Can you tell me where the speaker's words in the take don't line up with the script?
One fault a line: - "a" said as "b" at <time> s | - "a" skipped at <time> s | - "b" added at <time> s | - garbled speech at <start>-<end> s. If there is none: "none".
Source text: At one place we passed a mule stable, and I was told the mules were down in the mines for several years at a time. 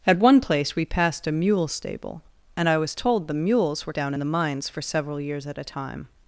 none